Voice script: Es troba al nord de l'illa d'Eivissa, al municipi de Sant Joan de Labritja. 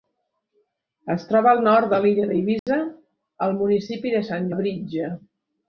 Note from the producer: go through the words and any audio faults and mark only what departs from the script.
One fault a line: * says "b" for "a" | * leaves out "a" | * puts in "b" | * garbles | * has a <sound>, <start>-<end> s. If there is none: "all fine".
* has a dropout, 2.6-2.7 s
* leaves out "Joan de"